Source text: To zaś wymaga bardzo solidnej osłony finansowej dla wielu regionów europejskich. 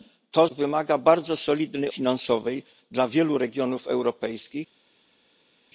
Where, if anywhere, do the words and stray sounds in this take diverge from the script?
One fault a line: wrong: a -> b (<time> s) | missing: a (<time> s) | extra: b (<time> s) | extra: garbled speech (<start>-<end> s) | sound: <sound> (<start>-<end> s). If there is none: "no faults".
missing: zaś (0.5 s)
missing: osłony (1.9 s)